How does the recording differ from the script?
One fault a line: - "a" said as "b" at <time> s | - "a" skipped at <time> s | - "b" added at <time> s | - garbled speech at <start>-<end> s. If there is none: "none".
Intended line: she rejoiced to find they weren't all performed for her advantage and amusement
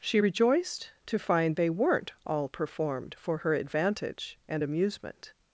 none